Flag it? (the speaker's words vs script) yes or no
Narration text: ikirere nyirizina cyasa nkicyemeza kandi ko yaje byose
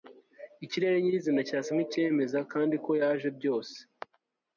no